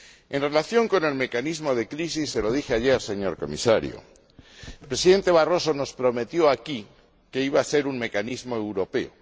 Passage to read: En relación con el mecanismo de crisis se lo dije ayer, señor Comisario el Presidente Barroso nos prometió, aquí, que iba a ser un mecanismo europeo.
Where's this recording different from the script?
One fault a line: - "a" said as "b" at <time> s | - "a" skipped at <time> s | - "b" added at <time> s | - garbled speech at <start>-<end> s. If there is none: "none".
none